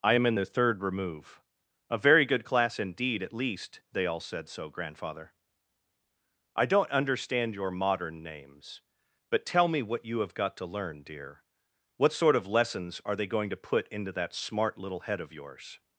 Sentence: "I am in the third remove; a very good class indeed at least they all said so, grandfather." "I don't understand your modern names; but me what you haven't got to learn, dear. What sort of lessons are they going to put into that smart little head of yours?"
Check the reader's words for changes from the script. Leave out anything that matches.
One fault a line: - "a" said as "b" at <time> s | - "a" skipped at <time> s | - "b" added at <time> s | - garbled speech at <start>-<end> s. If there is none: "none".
- "tell" added at 9.4 s
- "haven't" said as "have" at 10.2 s